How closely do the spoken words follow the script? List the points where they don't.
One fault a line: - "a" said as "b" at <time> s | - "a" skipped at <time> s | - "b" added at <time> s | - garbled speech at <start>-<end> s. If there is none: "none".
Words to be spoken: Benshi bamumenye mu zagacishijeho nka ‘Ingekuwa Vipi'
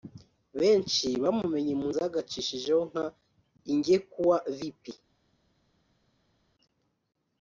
none